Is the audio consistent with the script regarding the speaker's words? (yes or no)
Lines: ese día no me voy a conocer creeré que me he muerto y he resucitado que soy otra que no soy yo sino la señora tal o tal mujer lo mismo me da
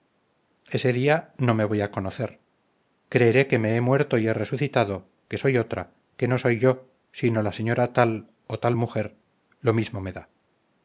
yes